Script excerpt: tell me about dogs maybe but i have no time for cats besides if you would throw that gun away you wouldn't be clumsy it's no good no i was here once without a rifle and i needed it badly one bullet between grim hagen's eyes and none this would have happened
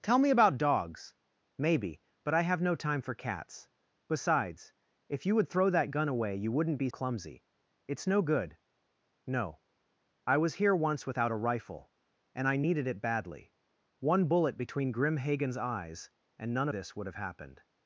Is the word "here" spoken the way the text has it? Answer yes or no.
yes